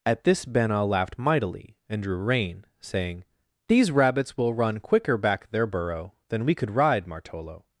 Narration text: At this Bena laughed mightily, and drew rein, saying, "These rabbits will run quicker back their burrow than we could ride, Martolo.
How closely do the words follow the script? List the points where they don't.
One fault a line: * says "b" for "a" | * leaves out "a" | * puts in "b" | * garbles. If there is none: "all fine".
all fine